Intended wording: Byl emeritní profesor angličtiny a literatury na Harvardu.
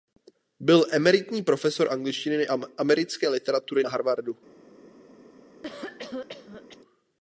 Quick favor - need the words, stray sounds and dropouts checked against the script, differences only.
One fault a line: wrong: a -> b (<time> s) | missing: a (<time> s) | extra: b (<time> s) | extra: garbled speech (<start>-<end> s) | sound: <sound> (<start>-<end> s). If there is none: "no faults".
extra: americké (2.8 s)
sound: cough (5.6-6.8 s)